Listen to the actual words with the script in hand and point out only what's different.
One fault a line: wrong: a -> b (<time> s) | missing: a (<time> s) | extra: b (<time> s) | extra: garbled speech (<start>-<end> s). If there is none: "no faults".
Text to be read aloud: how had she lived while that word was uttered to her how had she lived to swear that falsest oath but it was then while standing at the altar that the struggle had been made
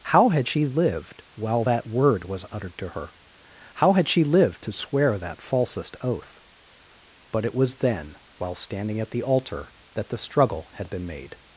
no faults